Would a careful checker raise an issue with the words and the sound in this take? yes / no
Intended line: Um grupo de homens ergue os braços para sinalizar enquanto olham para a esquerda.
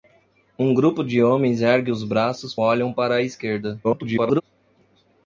yes